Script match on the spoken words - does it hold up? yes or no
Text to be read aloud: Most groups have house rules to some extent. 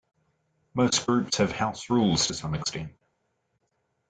yes